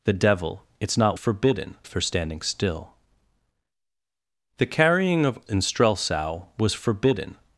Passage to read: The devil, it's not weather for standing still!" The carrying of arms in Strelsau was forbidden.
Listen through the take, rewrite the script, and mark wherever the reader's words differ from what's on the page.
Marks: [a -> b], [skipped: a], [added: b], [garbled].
The devil, it's not [weather -> forbidden] for standing still!" The carrying of [skipped: arms] in Strelsau was forbidden.